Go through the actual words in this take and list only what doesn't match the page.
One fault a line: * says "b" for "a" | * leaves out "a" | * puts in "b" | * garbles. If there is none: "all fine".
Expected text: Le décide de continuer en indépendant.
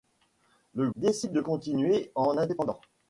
all fine